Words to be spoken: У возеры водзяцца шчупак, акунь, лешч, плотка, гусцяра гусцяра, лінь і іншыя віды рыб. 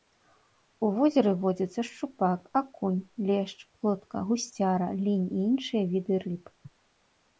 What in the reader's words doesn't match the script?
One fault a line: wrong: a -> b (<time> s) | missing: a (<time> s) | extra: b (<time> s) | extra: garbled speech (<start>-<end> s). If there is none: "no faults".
missing: гусцяра (4.9 s)